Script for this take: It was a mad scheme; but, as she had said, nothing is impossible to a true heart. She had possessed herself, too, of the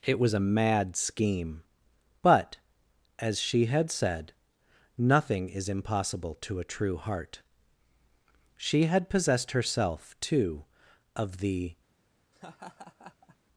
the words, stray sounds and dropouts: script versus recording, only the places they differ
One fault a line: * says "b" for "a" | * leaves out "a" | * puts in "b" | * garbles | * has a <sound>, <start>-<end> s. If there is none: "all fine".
* has a laugh, 12.3-13.4 s